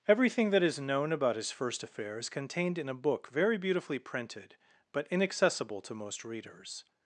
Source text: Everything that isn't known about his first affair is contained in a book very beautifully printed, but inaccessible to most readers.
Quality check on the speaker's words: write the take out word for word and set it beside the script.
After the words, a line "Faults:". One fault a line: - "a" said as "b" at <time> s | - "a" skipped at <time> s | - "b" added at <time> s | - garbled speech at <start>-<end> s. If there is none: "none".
Everything that is known about his first affair is contained in a book very beautifully printed, but inaccessible to most readers.
Faults:
- "isn't" said as "is" at 0.6 s